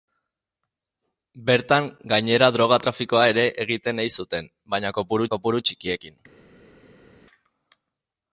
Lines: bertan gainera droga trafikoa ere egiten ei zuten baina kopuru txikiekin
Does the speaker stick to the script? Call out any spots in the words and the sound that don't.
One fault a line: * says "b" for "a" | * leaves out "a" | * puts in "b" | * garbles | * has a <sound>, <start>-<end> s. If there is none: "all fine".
* puts in "kopuru"